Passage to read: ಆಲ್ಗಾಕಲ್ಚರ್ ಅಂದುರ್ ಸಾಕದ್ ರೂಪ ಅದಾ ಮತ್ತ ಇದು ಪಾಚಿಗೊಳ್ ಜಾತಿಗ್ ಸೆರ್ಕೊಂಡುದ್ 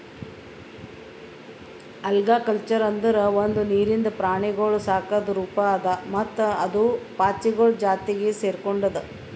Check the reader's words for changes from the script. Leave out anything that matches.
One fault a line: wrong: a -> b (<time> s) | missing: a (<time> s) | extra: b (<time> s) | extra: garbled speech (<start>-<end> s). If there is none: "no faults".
extra: ಒಂದು ನೀರಿಂದ ಪ್ರಾಣಿಗೊಳ್ (3.4 s)
wrong: ಇದು -> ಅದು (6.7 s)